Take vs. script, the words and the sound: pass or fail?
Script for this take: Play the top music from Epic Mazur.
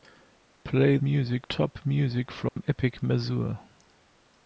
fail